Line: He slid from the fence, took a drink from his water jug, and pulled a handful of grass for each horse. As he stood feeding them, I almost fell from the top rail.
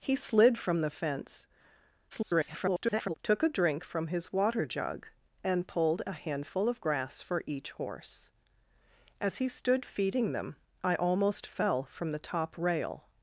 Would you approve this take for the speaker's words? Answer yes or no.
no